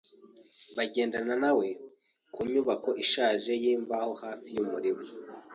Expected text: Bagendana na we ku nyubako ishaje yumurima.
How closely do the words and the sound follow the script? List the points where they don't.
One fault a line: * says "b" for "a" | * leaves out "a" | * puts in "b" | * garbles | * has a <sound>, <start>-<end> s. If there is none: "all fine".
* puts in "yimbaho hafi"